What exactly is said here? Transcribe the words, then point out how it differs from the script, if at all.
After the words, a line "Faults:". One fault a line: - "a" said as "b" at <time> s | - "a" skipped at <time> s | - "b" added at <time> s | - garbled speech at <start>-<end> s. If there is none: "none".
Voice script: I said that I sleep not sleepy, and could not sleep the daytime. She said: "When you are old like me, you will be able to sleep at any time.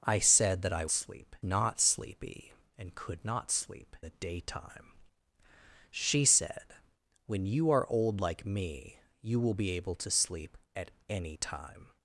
I said that I sleep not sleepy, and could not sleep the daytime. She said: "When you are old like me, you will be able to sleep at any time.
Faults:
none